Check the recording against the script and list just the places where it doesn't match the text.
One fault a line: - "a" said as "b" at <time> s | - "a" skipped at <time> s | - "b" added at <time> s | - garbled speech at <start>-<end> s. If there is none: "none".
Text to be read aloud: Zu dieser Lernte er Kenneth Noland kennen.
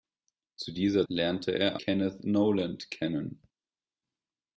none